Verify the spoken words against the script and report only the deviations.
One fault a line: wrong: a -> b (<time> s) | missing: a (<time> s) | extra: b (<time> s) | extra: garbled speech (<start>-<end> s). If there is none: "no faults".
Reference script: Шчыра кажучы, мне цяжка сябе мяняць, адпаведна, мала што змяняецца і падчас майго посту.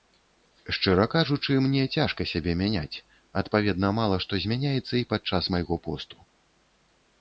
no faults